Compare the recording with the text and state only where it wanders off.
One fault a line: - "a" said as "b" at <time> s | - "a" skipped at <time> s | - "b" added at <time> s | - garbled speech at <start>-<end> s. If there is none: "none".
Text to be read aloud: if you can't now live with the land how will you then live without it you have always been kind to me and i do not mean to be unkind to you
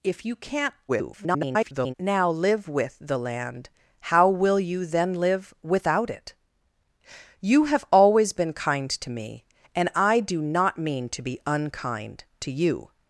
- garbled speech at 0.9-1.9 s